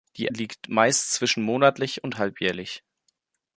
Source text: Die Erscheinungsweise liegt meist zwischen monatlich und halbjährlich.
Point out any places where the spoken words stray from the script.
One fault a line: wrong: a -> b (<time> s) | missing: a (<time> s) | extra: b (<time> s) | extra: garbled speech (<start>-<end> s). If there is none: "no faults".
missing: Erscheinungsweise (0.3 s)